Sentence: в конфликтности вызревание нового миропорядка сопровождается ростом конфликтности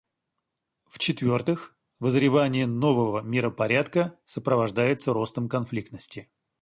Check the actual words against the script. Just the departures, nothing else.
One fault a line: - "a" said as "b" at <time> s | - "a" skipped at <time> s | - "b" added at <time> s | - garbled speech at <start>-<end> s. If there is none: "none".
- "конфликтности" said as "четвертых" at 1.0 s